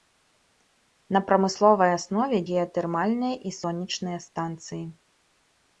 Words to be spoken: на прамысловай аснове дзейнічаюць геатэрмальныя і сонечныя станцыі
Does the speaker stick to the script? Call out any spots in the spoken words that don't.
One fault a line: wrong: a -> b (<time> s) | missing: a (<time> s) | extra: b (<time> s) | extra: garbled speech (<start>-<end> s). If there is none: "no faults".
missing: дзейнічаюць (2.4 s)